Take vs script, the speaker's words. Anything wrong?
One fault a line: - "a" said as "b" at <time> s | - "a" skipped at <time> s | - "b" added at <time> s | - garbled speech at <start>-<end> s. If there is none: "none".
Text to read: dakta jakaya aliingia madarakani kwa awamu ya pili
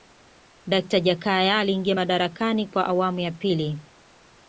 none